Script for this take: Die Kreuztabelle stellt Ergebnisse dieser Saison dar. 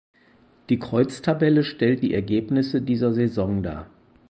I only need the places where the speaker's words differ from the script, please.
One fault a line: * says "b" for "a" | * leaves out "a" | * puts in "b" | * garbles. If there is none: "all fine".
* puts in "die"